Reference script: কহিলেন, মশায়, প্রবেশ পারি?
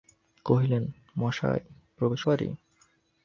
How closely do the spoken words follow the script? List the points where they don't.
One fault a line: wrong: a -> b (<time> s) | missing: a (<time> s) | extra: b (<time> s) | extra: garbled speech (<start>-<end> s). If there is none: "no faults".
no faults